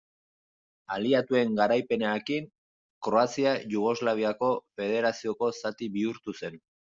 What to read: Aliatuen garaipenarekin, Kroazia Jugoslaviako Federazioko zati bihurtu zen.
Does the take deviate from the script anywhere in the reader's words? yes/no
no